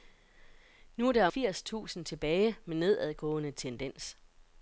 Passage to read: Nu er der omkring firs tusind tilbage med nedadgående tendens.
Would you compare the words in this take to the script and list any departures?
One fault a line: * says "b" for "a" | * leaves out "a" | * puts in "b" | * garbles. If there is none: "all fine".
* leaves out "omkring"